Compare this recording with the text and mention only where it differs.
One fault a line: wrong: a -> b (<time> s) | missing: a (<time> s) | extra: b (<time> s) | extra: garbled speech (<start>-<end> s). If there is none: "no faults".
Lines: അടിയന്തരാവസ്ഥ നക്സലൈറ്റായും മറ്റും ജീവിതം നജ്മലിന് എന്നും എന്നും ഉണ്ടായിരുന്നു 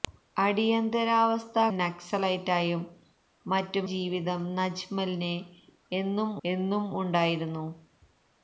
no faults